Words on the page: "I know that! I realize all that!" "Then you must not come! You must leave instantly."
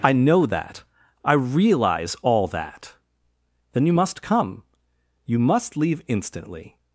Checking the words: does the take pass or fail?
fail